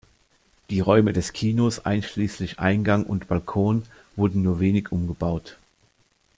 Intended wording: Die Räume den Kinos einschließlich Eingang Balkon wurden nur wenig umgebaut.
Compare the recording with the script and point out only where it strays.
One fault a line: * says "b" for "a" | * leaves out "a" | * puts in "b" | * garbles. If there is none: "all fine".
* says "des" for "den"
* puts in "und"